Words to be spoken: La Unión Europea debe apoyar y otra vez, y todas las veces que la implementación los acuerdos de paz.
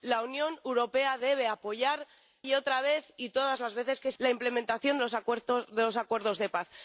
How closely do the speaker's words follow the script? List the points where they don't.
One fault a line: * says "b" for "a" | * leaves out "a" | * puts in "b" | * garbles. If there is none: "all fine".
all fine